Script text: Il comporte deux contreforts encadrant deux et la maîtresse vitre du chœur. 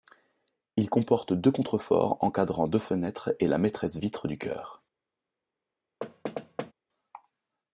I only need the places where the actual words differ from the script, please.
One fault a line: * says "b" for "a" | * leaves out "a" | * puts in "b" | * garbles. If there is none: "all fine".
* puts in "fenêtres"